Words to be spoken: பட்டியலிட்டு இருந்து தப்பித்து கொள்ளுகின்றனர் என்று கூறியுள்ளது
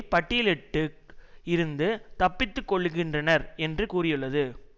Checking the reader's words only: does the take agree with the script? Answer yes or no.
yes